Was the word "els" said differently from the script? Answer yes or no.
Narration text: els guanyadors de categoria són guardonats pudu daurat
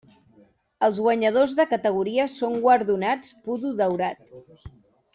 no